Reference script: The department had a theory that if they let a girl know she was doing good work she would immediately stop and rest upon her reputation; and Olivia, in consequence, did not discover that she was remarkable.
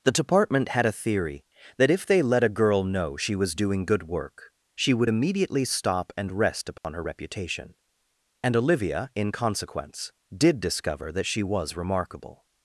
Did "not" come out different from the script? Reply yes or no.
yes